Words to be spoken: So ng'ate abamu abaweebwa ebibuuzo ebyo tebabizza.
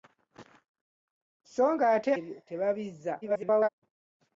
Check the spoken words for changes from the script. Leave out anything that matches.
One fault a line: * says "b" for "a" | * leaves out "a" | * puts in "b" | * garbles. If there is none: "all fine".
* leaves out "abamu abaweebwa ebibuuzo"
* garbles